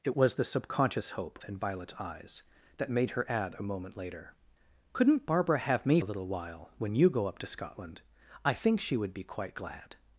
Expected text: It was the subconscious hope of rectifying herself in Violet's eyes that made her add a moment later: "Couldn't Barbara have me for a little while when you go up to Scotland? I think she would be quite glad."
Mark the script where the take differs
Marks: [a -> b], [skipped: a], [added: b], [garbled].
It was the subconscious hope [skipped: of rectifying herself] in Violet's eyes that made her add a moment later: "Couldn't Barbara have me [skipped: for] a little while when you go up to Scotland? I think she would be quite glad."